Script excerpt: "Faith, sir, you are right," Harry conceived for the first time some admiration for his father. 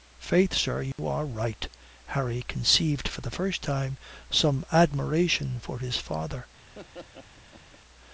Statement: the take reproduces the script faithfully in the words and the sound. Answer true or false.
false